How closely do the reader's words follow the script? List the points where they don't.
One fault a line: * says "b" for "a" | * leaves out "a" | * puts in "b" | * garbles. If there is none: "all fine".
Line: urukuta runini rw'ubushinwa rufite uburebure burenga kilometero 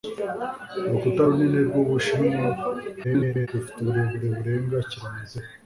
* garbles